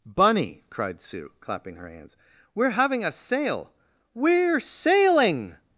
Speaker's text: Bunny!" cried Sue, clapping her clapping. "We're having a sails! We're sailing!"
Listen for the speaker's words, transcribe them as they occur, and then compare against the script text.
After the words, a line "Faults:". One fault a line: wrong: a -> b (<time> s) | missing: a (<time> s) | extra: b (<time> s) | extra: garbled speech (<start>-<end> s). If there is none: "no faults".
Bunny!" cried Sue, clapping her hands. "We're having a sail! We're sailing!"
Faults:
wrong: clapping -> hands (1.9 s)
wrong: sails -> sail (3.1 s)